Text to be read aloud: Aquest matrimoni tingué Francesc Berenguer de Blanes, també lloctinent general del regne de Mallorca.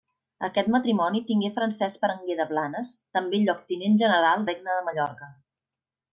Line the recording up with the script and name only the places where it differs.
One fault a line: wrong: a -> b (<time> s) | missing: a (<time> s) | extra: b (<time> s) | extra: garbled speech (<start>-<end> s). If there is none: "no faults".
missing: del (4.5 s)